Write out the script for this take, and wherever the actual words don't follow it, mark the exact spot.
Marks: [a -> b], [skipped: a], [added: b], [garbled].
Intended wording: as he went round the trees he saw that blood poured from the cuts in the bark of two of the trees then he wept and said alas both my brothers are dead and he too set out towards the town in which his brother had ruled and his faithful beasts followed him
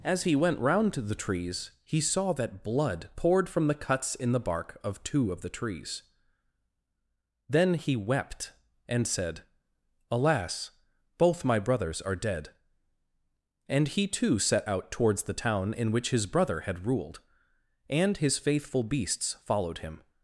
as he went round [added: to] the trees he saw that blood poured from the cuts in the bark of two of the trees then he wept and said alas both my brothers are dead and he too set out towards the town in which his brother had ruled and his faithful beasts followed him